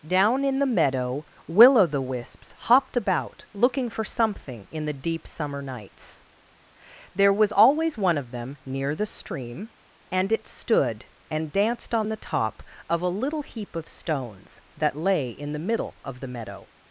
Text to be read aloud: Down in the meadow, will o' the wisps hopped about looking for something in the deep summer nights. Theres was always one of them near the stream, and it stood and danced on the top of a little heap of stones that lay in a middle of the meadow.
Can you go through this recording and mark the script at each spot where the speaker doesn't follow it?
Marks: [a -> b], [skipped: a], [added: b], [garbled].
Down in the meadow, will o' the wisps hopped about looking for something in the deep summer nights. [Theres -> There] was always one of them near the stream, and it stood and danced on the top of a little heap of stones that lay in [a -> the] middle of the meadow.